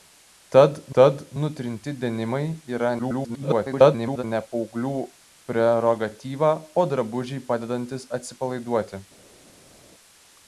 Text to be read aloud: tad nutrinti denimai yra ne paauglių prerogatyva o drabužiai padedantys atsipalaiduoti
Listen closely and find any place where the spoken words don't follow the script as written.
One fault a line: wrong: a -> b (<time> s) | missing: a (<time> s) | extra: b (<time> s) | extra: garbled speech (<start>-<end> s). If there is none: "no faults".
extra: tad (1.0 s)
extra: garbled speech (3.0-4.2 s)